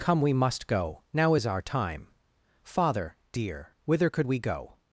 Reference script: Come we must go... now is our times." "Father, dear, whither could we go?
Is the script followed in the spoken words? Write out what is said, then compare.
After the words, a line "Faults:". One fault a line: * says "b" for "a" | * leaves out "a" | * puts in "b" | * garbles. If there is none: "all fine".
Come we must go... now is our time." "Father, dear, whither could we go?
Faults:
* says "time" for "times"